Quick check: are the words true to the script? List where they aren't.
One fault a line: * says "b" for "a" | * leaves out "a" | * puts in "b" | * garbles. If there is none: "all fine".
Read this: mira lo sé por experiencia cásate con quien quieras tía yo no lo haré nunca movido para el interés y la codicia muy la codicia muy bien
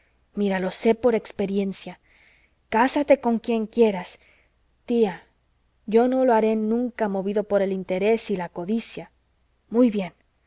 * says "por" for "para"
* leaves out "la codicia muy"